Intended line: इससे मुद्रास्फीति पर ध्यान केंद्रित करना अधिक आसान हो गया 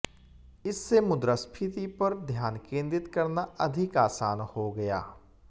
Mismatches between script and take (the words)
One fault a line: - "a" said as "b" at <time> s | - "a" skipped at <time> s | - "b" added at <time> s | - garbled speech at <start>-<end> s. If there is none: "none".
none